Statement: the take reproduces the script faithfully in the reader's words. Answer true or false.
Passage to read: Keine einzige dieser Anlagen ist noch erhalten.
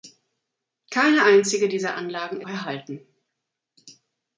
false